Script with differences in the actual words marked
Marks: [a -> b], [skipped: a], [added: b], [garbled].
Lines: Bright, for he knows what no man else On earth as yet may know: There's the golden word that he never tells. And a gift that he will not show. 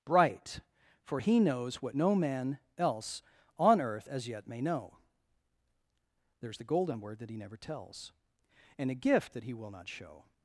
Bright, for he knows what no man else On earth as yet may know: There's the golden word that he never tells. And a gift that he will not show.